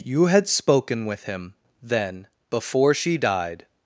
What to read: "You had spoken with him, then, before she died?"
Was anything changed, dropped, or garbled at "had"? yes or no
no